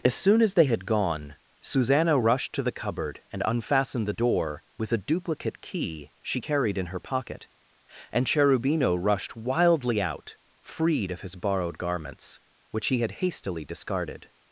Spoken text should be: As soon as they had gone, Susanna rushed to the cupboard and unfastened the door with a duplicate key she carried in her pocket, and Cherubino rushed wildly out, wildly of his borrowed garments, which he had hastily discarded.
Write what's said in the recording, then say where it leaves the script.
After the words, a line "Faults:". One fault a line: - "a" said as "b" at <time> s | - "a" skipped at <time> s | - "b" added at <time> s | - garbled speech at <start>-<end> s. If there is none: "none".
As soon as they had gone, Susanna rushed to the cupboard and unfastened the door with a duplicate key she carried in her pocket, and Cherubino rushed wildly out, freed of his borrowed garments, which he had hastily discarded.
Faults:
- "wildly" said as "freed" at 10.6 s